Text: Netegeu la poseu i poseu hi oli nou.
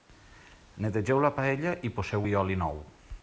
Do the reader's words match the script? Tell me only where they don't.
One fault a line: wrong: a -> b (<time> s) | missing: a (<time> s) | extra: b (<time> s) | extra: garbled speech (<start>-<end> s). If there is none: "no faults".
wrong: poseu -> paella (1.4 s)